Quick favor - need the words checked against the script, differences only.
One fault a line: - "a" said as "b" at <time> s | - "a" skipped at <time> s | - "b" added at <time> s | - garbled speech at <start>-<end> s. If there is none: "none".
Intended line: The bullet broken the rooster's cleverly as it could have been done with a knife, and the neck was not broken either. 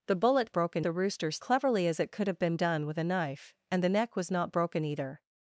none